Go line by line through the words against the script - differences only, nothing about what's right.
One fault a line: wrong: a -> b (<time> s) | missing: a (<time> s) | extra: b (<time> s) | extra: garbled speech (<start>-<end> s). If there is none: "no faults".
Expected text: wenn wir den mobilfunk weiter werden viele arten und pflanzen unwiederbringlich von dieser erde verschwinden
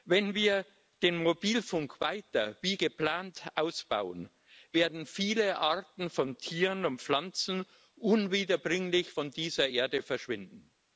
extra: wie geplant ausbauen (2.6 s)
extra: von tieren (6.1 s)